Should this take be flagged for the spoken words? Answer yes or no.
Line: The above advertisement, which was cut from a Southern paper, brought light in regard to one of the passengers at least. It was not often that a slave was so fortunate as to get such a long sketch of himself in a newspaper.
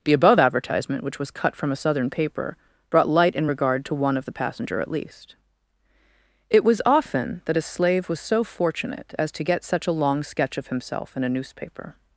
yes